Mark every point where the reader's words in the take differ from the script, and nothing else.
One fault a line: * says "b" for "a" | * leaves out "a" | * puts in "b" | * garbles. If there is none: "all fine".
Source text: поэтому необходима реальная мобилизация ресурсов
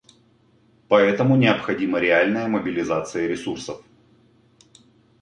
all fine